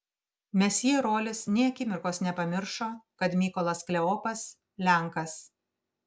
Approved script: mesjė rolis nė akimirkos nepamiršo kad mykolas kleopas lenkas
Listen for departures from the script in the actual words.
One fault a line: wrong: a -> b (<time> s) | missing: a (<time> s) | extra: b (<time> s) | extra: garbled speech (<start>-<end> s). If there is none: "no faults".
no faults